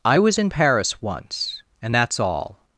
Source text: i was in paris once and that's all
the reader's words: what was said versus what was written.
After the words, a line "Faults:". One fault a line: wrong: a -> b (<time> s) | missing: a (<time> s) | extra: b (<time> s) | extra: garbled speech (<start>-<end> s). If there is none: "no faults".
i was in paris once and that's all
Faults:
no faults